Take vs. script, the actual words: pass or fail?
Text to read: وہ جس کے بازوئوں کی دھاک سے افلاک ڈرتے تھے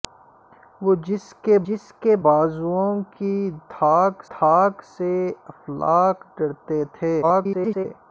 fail